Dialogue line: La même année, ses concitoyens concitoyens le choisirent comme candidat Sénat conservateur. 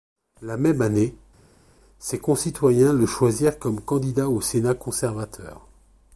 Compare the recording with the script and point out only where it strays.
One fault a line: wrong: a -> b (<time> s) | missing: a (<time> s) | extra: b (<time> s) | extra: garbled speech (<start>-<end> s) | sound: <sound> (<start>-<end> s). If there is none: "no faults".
missing: concitoyens (2.9 s)
extra: au (4.3 s)